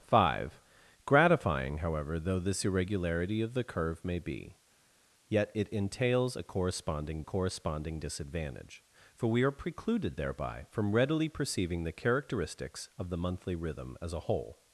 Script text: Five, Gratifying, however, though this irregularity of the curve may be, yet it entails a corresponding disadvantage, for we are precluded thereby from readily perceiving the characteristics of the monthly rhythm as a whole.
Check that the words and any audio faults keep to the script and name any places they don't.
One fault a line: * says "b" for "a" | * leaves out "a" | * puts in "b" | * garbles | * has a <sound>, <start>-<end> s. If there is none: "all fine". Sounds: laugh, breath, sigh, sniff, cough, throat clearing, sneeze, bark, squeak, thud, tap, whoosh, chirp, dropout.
* puts in "corresponding"